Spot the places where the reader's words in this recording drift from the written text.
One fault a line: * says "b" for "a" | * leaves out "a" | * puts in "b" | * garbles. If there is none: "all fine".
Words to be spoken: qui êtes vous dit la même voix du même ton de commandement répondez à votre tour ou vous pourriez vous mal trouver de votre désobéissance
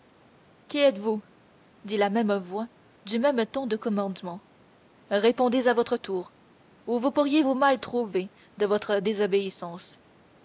all fine